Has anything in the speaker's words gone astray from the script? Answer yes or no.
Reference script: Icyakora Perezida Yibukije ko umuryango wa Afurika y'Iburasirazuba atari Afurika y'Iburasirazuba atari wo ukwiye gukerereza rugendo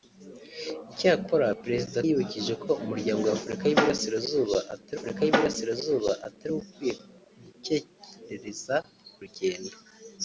no